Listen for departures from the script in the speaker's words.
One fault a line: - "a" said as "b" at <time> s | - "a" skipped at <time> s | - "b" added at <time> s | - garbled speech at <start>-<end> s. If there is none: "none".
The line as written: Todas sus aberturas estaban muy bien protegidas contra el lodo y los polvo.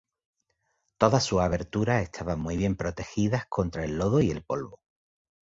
- "los" said as "el" at 4.3 s